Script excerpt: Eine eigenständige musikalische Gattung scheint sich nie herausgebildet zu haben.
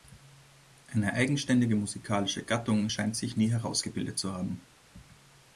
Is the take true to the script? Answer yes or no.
yes